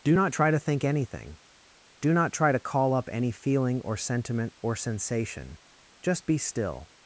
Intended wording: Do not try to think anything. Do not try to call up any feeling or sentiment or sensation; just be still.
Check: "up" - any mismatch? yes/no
no